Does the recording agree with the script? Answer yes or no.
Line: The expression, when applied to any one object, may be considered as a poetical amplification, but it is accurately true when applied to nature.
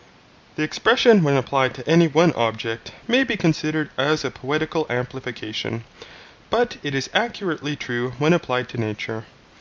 yes